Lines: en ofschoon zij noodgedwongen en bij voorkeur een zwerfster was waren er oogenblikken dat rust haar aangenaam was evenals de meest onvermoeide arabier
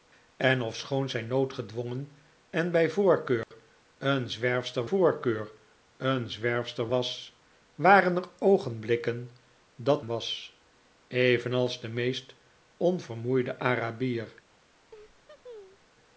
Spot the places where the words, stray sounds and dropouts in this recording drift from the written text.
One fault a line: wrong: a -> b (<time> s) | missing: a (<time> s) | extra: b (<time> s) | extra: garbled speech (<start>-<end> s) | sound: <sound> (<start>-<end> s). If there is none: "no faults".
sound: dropout (3.4-3.5 s)
extra: voorkeur een zwerfster (4.8 s)
missing: rust haar aangenaam (10.0 s)
sound: laugh (14.9-15.9 s)